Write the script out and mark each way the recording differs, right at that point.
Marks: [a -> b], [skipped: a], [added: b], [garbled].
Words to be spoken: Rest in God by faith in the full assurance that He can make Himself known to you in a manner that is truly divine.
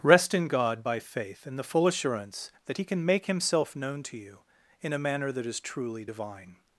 Rest in God by faith in the full assurance that He can make Himself known to you in a manner that is truly divine.